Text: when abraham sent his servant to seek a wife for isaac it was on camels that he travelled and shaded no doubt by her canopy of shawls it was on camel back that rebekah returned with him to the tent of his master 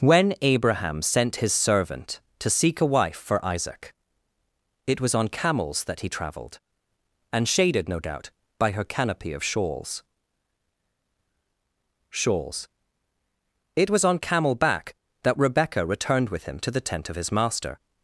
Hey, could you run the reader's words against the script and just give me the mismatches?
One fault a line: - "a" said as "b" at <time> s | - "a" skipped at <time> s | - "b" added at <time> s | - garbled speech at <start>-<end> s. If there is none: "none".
- "shawls" added at 12.1 s